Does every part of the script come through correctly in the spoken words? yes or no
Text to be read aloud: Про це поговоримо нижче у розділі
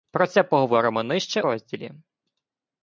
no